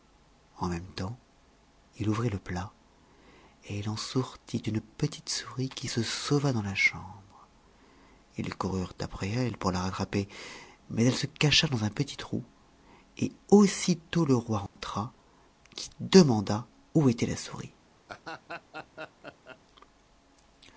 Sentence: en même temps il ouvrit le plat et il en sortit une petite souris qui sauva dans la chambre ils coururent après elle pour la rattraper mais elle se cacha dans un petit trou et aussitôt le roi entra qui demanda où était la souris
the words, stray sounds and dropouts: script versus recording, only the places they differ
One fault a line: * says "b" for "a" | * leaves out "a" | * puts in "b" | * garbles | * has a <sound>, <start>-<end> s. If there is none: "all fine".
* puts in "se"
* has a dropout, 14.7-14.8 s
* has a laugh, 18.1-19.6 s